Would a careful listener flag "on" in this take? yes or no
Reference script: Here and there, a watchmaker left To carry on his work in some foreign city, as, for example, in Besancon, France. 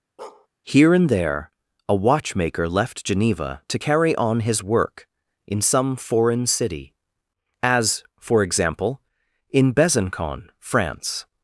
no